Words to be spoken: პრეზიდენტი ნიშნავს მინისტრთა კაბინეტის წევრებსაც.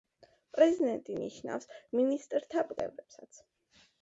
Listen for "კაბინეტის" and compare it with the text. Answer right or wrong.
wrong